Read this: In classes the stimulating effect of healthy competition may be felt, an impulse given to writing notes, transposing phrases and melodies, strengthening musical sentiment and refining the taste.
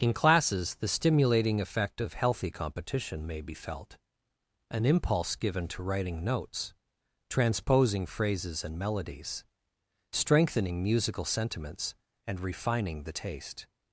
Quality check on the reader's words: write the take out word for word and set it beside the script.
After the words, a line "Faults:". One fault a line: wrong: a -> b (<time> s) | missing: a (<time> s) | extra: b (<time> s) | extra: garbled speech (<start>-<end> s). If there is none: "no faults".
In classes the stimulating effect of healthy competition may be felt, an impulse given to writing notes, transposing phrases and melodies, strengthening musical sentiments and refining the taste.
Faults:
wrong: sentiment -> sentiments (11.2 s)